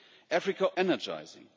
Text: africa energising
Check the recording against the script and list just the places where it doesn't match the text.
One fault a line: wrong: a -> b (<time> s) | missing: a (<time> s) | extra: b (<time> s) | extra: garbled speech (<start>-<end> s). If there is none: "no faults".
no faults